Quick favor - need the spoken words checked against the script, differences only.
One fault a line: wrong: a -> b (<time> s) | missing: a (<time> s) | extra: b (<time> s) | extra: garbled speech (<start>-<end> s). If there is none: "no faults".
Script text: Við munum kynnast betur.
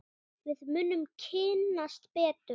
no faults